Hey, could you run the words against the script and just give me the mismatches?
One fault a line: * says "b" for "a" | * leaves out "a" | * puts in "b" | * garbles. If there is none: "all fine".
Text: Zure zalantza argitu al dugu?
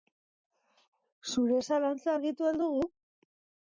all fine